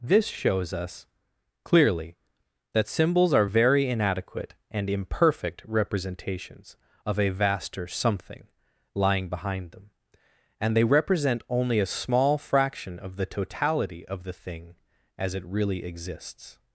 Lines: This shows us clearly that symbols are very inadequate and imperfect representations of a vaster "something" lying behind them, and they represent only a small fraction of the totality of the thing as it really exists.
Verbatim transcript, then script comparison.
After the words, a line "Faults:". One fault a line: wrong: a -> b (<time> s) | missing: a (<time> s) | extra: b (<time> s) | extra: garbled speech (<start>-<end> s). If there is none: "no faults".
This shows us clearly that symbols are very inadequate and imperfect representations of a vaster "something" lying behind them, and they represent only a small fraction of the totality of the thing as it really exists.
Faults:
no faults